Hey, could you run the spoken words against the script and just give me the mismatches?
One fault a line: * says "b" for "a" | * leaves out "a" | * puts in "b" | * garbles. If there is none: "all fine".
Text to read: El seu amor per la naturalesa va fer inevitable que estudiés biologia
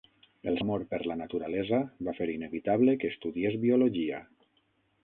* leaves out "seu"